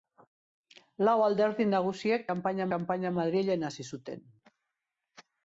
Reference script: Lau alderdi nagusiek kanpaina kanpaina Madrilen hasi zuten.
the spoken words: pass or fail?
pass